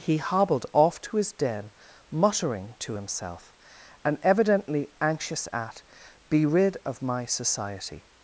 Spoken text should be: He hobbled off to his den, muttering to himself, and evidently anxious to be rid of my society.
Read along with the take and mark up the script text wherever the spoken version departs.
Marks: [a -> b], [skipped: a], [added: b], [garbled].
He hobbled off to his den, muttering to himself, and evidently anxious [to -> at] be rid of my society.